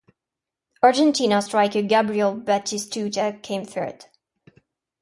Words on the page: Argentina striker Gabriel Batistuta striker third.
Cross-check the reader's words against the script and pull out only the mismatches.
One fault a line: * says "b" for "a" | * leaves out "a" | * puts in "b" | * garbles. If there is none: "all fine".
* says "came" for "striker"